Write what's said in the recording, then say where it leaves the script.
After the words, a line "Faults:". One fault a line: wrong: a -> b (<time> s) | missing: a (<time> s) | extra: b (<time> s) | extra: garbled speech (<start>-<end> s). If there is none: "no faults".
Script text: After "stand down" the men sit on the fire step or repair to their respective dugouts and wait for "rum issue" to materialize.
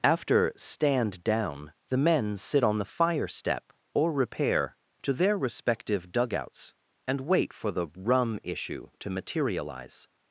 After "stand down" the men sit on the fire step or repair to their respective dugouts and wait for the "rum issue" to materialize.
Faults:
extra: the (7.7 s)